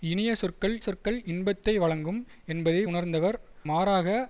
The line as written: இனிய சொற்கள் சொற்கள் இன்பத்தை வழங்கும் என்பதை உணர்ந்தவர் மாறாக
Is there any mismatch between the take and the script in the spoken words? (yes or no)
no